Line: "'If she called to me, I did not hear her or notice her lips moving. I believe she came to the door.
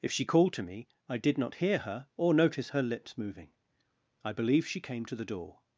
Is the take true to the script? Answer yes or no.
yes